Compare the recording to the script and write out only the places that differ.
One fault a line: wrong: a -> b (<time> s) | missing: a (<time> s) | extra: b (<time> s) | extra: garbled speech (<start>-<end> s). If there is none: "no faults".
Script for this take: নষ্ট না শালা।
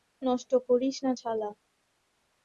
extra: করিস (0.7 s)